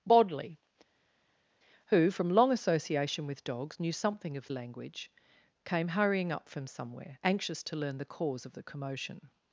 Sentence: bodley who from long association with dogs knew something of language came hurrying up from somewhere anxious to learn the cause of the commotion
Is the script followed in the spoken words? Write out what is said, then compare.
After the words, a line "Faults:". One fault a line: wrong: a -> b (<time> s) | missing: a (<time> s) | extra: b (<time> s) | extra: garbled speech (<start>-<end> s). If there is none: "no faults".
bodley who from long association with dogs knew something of language came hurrying up from somewhere anxious to learn the cause of the commotion
Faults:
no faults